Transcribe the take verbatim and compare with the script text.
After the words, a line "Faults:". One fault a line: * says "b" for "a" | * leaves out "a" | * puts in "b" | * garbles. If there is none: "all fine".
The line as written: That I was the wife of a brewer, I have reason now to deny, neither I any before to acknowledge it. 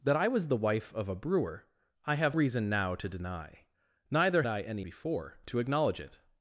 That I was the wife of a brewer, I have reason now to deny, neither I any before to acknowledge it.
Faults:
all fine